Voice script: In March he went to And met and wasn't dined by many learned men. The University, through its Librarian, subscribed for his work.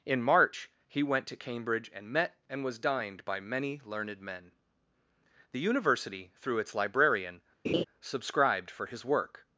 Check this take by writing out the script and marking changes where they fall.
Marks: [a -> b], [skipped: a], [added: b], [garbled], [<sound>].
In March he went to [added: Cambridge] And met and [wasn't -> was] dined by many learned men. The University, through its Librarian, [laugh] subscribed for his work.